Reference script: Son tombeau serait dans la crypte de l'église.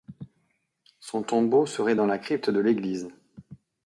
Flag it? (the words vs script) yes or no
no